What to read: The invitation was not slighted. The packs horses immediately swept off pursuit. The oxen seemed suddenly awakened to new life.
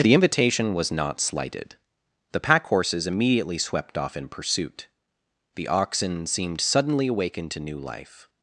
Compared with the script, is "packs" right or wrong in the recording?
wrong